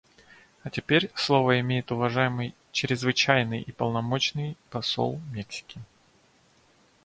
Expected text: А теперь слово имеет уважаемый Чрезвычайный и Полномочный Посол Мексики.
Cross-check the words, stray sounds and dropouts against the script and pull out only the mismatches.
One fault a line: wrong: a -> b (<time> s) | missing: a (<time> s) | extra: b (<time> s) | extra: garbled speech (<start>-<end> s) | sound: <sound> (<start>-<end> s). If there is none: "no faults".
no faults